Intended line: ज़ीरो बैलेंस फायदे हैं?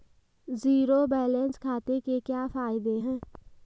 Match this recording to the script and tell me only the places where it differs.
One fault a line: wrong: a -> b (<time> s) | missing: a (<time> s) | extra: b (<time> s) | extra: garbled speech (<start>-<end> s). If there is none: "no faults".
extra: खाते के क्या (1.6 s)